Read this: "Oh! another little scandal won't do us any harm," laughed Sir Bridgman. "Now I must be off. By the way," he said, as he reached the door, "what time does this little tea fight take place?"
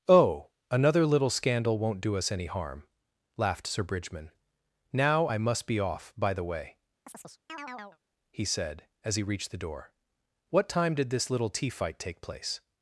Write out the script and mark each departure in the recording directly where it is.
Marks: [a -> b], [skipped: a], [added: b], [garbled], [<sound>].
"Oh! another little scandal won't do us any harm," laughed Sir Bridgman. "Now I must be off. By the way," [chirp] he said, as he reached the door, "what time [does -> did] this little tea fight take place?"